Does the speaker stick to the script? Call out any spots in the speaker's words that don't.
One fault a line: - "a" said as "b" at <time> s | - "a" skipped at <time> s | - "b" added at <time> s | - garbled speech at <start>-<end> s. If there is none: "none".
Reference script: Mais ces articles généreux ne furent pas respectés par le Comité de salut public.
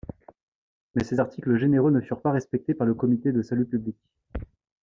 none